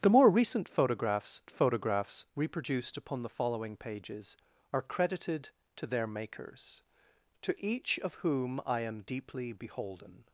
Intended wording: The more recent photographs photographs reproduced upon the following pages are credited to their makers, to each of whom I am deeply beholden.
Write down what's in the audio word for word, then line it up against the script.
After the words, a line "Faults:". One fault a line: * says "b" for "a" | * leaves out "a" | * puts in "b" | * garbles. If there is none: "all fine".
The more recent photographs photographs reproduced upon the following pages are credited to their makers, to each of whom I am deeply beholden.
Faults:
all fine